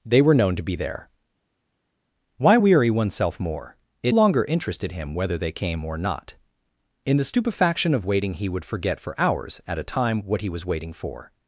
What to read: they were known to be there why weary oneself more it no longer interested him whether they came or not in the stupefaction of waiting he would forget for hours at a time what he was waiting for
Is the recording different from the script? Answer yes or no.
yes